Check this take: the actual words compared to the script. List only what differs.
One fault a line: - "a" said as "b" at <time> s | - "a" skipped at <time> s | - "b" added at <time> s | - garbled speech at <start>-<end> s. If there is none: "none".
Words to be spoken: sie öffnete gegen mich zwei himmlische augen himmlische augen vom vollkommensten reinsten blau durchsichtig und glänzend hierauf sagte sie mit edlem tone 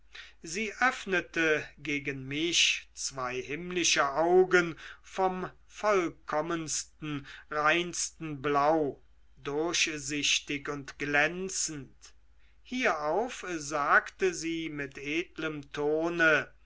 - "himmlische augen" skipped at 4.8 s